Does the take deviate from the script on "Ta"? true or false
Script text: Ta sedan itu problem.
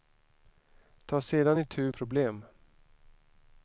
false